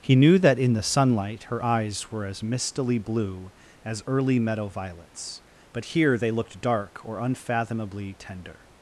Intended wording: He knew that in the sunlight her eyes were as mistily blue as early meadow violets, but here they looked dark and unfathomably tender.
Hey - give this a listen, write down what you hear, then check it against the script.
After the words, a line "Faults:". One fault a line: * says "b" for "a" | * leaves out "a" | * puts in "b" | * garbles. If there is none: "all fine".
He knew that in the sunlight her eyes were as mistily blue as early meadow violets, but here they looked dark or unfathomably tender.
Faults:
* says "or" for "and"